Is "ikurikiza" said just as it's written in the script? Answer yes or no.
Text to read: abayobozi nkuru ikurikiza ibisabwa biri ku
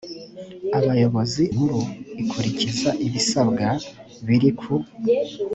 yes